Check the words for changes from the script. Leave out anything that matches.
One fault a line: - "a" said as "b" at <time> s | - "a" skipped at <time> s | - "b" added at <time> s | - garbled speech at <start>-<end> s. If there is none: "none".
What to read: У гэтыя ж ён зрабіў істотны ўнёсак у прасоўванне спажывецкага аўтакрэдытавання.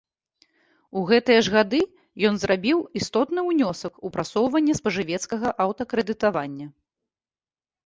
- "гады" added at 1.5 s